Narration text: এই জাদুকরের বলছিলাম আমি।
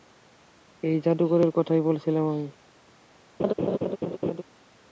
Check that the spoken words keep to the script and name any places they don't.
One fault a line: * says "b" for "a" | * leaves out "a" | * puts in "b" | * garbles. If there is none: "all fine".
* puts in "কথাই"